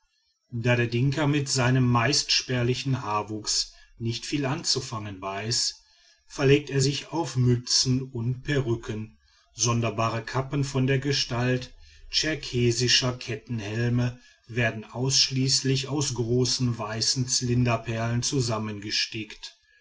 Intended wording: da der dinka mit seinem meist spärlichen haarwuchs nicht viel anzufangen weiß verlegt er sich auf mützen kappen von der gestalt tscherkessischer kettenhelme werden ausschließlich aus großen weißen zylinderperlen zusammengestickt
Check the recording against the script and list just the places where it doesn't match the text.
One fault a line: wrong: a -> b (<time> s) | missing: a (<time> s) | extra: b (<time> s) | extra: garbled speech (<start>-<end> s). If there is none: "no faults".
extra: und perücken sonderbare (8.0 s)